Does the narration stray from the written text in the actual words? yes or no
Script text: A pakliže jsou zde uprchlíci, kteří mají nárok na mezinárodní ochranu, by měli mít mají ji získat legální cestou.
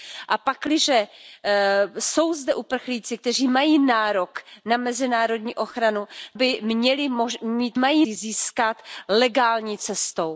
no